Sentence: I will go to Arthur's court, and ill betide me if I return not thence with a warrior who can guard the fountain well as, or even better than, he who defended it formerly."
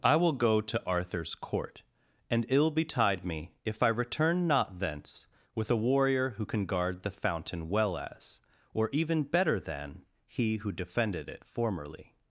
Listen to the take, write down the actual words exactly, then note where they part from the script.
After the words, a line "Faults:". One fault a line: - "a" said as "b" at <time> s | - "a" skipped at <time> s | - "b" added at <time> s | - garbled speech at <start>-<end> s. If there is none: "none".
I will go to Arthur's court, and ill betide me if I return not thence with a warrior who can guard the fountain well as, or even better than, he who defended it formerly."
Faults:
none